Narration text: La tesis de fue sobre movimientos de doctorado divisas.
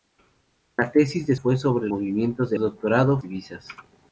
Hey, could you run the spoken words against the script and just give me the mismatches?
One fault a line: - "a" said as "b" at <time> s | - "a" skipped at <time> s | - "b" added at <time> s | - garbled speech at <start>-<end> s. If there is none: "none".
none